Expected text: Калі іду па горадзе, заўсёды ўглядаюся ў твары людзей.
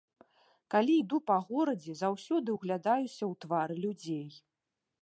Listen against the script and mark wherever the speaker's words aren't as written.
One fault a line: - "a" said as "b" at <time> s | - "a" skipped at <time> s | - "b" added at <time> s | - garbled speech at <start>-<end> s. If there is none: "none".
none